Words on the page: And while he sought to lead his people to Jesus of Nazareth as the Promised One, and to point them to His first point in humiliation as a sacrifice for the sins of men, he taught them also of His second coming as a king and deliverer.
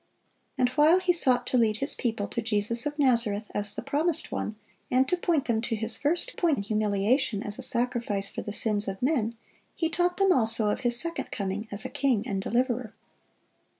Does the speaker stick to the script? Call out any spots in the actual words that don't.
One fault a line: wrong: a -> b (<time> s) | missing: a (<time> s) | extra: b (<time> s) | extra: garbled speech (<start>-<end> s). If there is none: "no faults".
no faults